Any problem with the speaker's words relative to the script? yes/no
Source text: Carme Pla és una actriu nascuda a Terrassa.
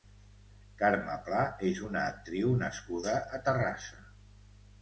no